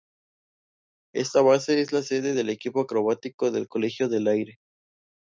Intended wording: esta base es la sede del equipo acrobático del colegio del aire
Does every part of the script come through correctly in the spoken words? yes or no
yes